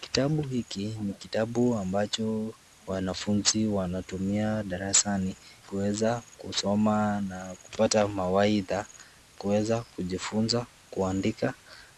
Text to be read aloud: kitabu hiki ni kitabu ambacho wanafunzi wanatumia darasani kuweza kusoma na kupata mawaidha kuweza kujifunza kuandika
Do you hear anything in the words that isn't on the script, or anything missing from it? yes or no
no